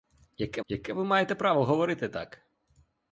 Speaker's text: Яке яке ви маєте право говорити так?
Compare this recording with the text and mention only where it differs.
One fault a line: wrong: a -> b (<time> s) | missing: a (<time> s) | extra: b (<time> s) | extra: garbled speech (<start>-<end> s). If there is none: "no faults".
no faults